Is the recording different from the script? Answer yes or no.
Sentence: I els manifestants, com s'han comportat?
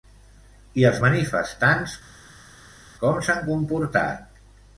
no